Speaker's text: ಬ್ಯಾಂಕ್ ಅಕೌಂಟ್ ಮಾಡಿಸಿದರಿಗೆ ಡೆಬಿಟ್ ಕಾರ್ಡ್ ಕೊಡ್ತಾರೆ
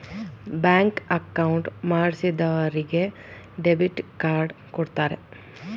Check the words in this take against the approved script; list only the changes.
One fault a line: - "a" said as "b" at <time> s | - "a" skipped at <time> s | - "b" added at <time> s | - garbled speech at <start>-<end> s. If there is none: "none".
none